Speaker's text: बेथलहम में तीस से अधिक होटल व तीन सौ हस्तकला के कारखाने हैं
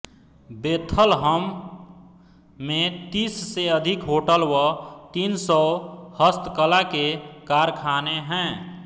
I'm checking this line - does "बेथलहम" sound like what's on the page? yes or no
yes